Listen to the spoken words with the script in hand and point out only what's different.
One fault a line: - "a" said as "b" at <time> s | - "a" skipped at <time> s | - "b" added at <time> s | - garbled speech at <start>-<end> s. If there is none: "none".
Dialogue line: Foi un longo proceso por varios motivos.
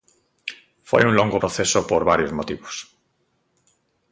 none